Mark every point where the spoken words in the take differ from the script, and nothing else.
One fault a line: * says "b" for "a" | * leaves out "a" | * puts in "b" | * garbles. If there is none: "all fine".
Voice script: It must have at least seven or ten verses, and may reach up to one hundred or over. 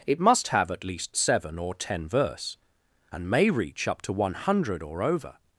* says "verse" for "verses"